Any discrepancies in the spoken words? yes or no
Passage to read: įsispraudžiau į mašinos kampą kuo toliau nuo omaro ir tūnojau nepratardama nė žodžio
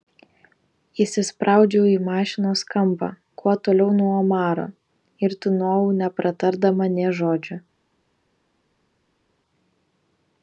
no